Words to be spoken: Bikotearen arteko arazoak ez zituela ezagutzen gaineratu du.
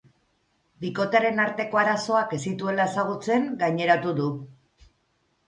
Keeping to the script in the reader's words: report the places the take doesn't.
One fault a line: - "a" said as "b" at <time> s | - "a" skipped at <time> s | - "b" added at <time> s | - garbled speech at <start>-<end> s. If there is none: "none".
none